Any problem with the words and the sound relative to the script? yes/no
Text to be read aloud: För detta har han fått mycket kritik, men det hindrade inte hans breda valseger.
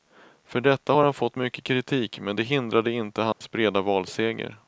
yes